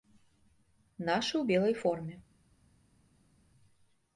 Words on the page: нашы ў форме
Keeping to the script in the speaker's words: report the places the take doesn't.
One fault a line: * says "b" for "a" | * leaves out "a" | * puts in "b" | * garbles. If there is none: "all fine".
* puts in "белай"